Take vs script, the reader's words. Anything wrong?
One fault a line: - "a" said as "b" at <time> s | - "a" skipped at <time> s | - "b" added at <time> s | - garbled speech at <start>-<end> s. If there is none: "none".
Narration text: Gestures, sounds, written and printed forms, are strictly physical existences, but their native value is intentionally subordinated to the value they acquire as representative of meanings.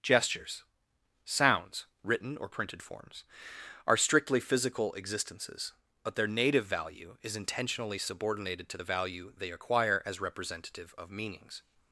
- "and" said as "or" at 2.4 s